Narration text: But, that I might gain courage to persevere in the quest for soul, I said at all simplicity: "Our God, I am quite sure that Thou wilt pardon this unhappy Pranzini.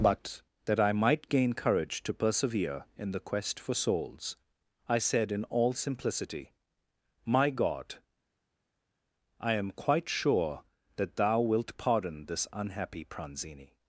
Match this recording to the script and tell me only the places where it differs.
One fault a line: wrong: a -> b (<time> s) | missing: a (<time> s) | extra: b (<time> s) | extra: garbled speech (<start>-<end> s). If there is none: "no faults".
wrong: soul -> souls (3.8 s)
wrong: at -> in (5.3 s)
wrong: Our -> My (7.2 s)